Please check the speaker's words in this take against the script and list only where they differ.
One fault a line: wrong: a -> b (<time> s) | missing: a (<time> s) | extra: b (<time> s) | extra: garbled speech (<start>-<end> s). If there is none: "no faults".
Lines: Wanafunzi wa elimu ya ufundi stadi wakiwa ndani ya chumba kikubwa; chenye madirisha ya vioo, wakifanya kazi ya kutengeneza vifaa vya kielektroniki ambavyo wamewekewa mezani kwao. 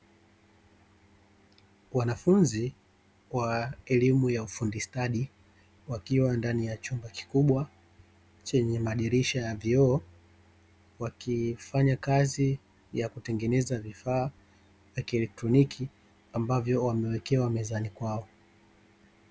no faults